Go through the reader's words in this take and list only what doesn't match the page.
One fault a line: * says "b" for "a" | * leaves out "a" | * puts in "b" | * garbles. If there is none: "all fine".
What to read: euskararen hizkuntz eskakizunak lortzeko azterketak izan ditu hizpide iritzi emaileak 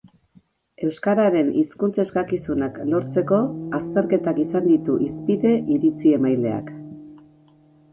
all fine